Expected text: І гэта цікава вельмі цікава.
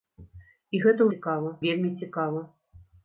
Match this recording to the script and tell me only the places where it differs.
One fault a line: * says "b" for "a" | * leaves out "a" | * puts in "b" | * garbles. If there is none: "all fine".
all fine